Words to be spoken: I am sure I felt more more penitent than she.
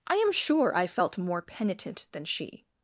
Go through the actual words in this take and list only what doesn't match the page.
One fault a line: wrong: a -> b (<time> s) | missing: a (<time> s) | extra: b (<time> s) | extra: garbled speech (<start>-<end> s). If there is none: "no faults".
missing: more (1.4 s)